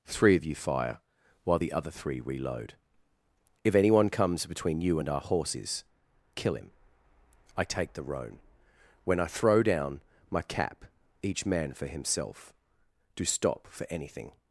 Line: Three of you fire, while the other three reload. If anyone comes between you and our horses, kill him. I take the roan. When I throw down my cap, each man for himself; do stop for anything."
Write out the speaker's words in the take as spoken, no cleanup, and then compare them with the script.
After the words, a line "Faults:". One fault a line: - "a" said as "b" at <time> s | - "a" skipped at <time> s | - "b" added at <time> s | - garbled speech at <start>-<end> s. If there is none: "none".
Three of you fire, while the other three reload. If anyone comes between you and our horses, kill him. I take the roan. When I throw down my cap, each man for himself; do stop for anything."
Faults:
none